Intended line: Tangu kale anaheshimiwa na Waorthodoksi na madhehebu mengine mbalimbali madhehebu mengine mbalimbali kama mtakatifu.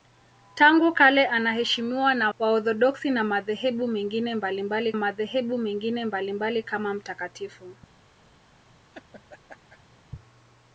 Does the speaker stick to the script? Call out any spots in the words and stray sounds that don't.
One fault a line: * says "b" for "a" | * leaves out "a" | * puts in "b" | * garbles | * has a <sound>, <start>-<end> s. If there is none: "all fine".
* has a laugh, 8.7-10.0 s